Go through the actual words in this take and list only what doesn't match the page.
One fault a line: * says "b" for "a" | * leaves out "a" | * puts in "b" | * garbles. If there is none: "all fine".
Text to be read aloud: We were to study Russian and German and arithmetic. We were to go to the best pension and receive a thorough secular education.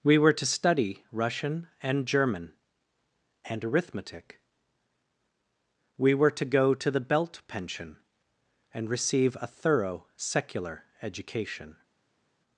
* says "belt" for "best"